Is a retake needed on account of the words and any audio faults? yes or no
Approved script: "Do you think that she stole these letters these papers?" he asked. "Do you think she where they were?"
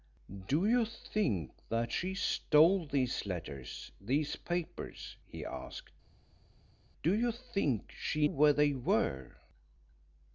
no